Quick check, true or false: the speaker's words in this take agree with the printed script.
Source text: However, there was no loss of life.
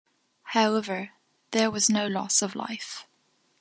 true